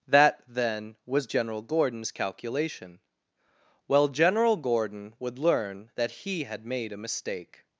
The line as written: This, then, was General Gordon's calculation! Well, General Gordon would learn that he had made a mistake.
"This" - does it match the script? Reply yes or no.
no